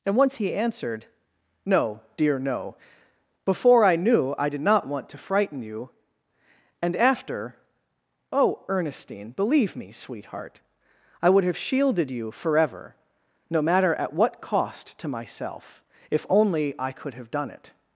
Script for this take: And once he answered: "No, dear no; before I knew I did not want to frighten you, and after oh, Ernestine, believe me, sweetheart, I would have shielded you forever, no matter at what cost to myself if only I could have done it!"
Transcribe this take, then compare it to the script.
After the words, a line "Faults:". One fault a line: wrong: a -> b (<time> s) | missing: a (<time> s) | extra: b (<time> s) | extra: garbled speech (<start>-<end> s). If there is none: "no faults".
And once he answered: "No, dear no; before I knew I did not want to frighten you, and after oh, Ernestine, believe me, sweetheart, I would have shielded you forever, no matter at what cost to myself if only I could have done it!"
Faults:
no faults